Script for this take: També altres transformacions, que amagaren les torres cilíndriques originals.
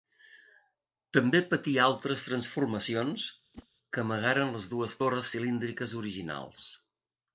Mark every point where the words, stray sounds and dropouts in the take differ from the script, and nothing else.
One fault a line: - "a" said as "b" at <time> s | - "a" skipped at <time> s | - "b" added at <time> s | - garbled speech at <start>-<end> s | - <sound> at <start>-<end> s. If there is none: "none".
- "patí" added at 1.5 s
- whoosh at 3.5-3.7 s
- "dues" added at 4.7 s